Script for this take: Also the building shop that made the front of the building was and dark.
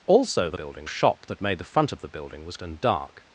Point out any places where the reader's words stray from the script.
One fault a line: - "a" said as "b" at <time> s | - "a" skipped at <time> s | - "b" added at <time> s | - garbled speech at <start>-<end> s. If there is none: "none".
none